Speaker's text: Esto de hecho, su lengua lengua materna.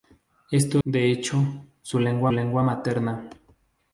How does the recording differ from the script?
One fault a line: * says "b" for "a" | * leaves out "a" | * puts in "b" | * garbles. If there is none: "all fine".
all fine